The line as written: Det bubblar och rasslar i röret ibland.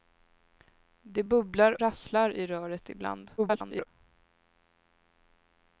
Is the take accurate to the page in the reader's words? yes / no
no